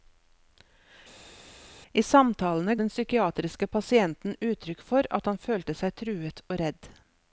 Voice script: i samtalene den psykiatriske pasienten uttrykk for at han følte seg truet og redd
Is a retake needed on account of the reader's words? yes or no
no